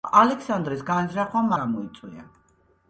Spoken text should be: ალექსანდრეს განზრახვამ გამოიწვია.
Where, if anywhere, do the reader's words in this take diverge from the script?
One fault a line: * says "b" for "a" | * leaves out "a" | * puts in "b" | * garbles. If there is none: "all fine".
all fine